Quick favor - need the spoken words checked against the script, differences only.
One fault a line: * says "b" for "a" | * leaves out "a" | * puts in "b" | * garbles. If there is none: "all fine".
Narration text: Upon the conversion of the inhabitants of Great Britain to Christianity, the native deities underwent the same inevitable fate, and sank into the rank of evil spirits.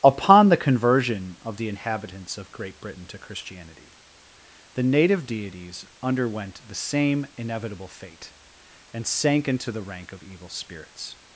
all fine